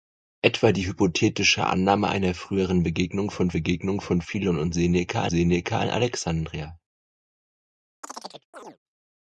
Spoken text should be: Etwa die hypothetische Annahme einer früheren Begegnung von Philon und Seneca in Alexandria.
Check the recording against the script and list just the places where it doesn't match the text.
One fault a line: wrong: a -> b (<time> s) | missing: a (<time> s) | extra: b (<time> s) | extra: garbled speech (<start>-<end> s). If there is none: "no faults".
extra: Begegnung von (3.5 s)
extra: Seneca (5.3 s)